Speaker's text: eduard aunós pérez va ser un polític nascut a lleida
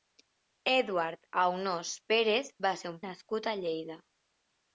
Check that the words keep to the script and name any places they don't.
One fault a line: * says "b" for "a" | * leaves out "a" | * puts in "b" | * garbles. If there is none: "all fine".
* leaves out "polític"